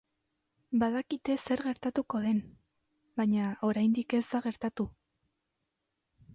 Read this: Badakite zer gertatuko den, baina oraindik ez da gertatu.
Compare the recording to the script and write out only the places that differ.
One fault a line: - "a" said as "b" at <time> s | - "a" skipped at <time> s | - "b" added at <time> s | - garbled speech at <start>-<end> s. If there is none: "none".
none